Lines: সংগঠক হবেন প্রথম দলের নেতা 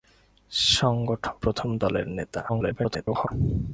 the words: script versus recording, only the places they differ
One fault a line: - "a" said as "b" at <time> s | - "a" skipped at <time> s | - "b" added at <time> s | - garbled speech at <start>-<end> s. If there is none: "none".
- "হবেন" skipped at 1.4 s
- garbled speech at 2.5-3.3 s